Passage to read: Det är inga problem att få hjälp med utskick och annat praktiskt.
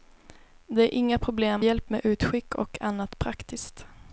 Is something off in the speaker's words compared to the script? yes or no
yes